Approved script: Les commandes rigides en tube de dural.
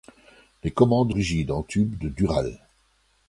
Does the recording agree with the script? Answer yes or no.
yes